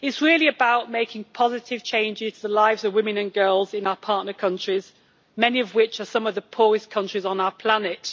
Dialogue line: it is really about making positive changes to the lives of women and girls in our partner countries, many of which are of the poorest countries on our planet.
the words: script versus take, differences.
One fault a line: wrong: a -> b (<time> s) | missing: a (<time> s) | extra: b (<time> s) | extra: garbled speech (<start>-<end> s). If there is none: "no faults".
extra: some (6.1 s)